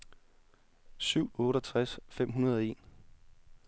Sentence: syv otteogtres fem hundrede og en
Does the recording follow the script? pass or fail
pass